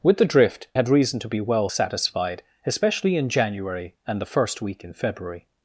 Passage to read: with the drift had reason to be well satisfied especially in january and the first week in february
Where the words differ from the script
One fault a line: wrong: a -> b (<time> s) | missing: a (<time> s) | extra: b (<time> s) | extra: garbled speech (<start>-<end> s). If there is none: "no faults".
no faults